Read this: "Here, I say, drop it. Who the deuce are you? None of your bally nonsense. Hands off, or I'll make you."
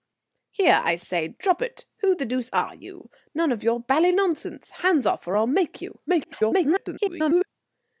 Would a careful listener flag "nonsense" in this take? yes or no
no